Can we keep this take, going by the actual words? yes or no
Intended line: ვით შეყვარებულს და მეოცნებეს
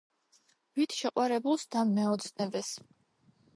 yes